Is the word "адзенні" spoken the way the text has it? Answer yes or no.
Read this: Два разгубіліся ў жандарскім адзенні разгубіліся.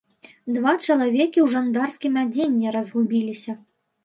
yes